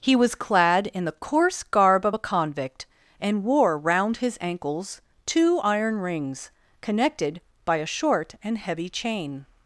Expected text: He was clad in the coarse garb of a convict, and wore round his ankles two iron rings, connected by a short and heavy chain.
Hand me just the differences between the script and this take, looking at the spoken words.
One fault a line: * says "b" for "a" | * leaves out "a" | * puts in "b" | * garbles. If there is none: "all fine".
all fine